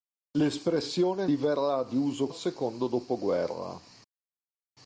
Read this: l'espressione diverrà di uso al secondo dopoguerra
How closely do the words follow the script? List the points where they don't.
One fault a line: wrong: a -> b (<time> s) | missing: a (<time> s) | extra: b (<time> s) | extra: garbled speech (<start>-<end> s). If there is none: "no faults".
no faults